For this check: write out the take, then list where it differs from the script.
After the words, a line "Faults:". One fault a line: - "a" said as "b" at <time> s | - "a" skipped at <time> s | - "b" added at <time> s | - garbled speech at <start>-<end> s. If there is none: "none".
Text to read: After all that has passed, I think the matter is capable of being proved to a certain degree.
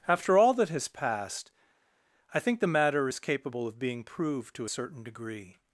After all that has passed, I think the matter is capable of being proved to a certain degree.
Faults:
none